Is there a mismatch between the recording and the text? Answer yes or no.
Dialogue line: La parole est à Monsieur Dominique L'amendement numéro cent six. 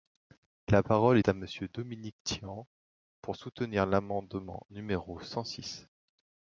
yes